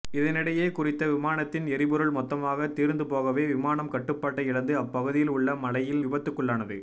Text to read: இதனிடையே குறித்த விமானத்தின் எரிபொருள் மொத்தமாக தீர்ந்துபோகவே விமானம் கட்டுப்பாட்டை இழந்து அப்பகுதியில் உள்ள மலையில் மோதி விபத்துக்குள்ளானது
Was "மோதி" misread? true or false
true